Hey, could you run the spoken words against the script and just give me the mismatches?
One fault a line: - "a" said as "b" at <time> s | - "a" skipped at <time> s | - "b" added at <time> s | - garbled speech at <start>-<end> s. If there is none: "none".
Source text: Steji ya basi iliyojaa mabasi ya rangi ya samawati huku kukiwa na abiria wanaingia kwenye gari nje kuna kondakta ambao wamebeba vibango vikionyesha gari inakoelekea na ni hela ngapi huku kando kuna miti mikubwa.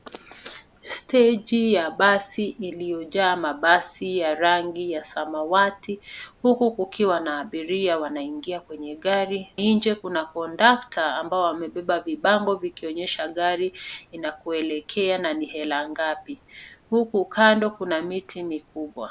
none